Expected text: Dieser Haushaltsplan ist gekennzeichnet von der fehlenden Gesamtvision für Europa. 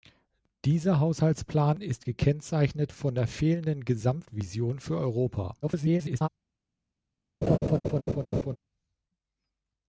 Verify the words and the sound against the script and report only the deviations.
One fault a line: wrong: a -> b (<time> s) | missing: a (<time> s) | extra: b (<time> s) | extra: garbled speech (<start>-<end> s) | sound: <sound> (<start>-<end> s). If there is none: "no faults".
extra: garbled speech (5.6-6.3 s)
sound: laugh (7.4-8.6 s)